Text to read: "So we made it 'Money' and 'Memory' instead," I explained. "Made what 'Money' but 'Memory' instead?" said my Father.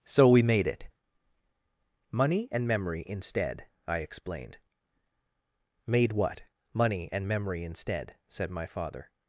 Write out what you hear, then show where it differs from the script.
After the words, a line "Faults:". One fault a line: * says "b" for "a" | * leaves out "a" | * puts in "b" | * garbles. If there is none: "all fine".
"So we made it 'Money' and 'Memory' instead," I explained. "Made what 'Money' and 'Memory' instead?" said my Father.
Faults:
* says "and" for "but"